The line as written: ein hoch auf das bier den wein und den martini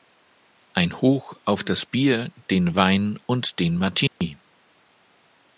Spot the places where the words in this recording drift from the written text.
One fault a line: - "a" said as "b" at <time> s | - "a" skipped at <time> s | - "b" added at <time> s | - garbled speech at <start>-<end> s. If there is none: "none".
none